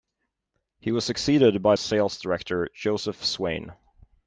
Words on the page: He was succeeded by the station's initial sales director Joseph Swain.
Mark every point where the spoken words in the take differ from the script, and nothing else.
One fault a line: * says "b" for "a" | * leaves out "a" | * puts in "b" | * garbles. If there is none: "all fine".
* leaves out "the station's initial"